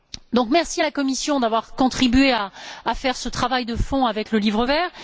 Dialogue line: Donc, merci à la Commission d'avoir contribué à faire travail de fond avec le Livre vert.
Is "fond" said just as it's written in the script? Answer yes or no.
yes